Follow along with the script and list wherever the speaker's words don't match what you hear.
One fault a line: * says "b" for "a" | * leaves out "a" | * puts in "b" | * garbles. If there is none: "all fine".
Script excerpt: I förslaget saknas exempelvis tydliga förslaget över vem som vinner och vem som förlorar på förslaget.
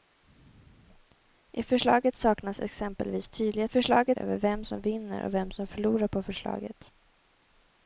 all fine